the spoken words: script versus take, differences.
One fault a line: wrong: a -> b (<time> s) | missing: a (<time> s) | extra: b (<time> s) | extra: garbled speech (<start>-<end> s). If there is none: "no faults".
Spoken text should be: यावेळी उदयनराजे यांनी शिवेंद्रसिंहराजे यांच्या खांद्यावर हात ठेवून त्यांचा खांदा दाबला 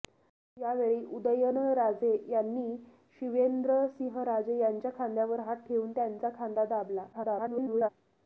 extra: garbled speech (7.1-7.9 s)